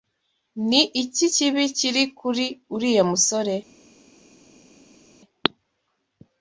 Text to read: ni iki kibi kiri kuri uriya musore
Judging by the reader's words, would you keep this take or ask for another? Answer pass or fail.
pass